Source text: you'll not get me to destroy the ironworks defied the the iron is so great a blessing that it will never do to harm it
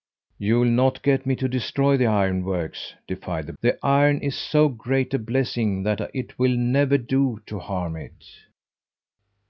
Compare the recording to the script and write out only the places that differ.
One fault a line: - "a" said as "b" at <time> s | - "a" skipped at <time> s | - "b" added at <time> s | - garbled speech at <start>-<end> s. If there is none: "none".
none